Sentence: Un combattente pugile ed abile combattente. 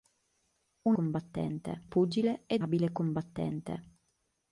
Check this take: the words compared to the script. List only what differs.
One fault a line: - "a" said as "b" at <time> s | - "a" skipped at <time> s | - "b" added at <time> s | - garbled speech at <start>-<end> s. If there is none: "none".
none